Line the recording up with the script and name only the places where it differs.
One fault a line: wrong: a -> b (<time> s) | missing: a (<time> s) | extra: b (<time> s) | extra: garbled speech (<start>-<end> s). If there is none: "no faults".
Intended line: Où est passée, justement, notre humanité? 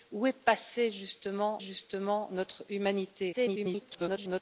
extra: justement (1.6 s)
extra: garbled speech (3.3-4.4 s)